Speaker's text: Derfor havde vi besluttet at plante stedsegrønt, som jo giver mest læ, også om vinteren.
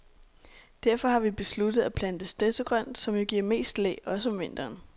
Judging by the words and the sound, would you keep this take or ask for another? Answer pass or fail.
fail